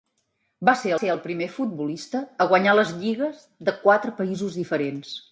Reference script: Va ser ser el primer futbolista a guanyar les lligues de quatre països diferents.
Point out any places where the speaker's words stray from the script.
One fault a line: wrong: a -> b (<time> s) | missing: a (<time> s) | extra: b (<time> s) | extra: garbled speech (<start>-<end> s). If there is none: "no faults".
no faults